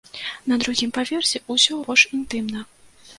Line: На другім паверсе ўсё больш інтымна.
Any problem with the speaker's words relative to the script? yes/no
no